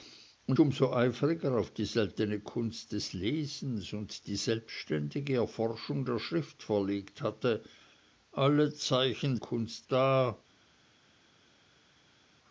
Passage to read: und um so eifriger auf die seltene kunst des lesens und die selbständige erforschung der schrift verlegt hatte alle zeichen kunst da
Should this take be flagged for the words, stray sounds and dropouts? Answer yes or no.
no